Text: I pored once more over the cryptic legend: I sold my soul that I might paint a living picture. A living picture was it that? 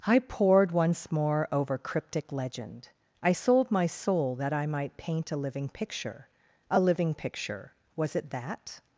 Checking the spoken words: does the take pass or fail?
fail